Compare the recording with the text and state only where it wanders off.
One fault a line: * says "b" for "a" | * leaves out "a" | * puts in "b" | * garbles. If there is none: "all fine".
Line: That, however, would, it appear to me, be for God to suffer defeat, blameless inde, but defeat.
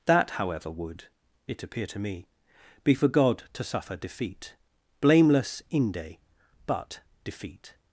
all fine